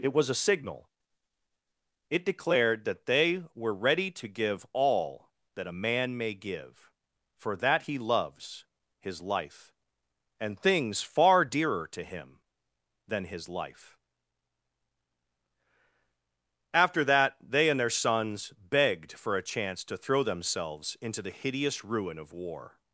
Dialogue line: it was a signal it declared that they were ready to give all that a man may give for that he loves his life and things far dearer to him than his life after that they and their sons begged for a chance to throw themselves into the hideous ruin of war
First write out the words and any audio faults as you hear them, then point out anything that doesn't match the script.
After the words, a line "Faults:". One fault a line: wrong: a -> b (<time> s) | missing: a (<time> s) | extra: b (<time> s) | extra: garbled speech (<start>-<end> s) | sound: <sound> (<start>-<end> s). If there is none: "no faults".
it was a signal it declared that they were ready to give all that a man may give for that he loves his life and things far dearer to him than his life after that they and their sons begged for a chance to throw themselves into the hideous ruin of war
Faults:
no faults